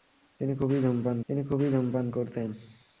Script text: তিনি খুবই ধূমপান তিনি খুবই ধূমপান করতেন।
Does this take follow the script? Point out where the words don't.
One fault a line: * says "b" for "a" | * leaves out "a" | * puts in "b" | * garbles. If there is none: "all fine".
all fine